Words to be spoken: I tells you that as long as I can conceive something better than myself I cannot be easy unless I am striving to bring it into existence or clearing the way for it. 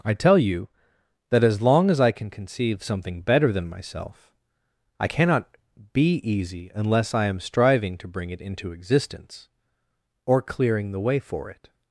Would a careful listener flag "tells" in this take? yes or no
yes